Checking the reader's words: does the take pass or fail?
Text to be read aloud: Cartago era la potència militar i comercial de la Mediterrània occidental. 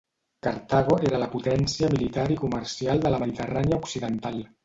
pass